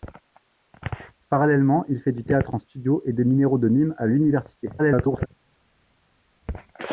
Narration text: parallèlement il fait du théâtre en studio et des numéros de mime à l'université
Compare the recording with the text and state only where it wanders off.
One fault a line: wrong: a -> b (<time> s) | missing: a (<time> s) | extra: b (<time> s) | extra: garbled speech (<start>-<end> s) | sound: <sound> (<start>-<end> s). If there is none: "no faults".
extra: garbled speech (4.8-5.3 s)